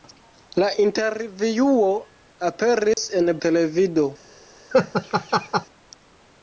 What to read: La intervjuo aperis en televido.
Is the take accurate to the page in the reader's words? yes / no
yes